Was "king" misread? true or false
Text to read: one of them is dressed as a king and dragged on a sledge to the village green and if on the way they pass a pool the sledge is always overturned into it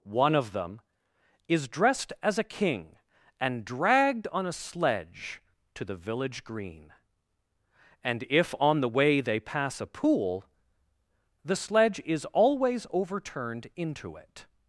false